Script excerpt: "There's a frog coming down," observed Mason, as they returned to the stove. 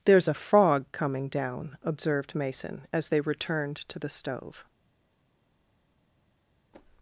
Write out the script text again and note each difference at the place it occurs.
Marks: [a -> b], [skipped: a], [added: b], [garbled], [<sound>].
"There's a frog coming down," observed Mason, as they returned to the stove.